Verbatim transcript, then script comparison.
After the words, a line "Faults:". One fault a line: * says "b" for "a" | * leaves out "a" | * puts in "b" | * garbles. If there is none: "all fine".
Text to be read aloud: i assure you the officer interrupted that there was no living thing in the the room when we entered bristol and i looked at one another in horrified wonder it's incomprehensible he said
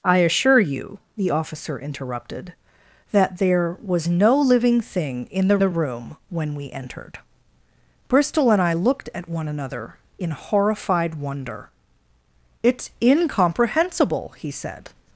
i assure you the officer interrupted that there was no living thing in the the room when we entered bristol and i looked at one another in horrified wonder it's incomprehensible he said
Faults:
all fine